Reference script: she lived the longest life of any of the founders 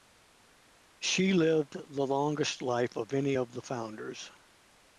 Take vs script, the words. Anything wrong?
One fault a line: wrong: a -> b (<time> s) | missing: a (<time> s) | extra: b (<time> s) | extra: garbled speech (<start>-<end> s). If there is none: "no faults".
no faults